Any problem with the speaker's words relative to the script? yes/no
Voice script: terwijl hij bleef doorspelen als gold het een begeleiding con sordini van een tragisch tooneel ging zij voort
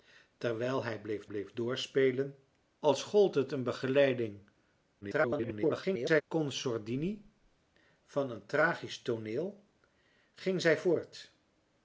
yes